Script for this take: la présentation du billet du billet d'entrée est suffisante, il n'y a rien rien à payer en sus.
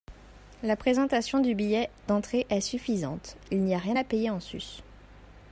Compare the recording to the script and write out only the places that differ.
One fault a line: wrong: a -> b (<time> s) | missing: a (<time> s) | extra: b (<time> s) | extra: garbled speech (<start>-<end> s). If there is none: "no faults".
missing: du billet (1.9 s)
missing: rien (4.0 s)